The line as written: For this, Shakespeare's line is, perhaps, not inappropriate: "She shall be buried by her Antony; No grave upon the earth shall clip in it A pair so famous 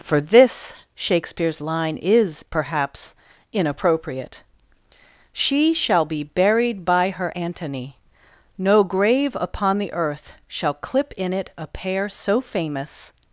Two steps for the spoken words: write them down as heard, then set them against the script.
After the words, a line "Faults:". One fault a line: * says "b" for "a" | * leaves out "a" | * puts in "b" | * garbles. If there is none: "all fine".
For this, Shakespeare's line is, perhaps, inappropriate: "She shall be buried by her Antony; No grave upon the earth shall clip in it A pair so famous
Faults:
* leaves out "not"